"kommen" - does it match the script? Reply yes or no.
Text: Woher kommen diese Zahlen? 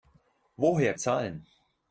no